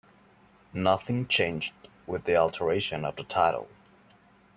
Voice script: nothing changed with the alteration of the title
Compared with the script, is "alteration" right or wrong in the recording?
right